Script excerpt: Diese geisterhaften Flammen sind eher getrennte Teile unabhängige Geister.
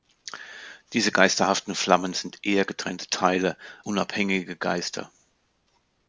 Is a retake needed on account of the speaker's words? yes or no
no